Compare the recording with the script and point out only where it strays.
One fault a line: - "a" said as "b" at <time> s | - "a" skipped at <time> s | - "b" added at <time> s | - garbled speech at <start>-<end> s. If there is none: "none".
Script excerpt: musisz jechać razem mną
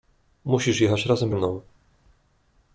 none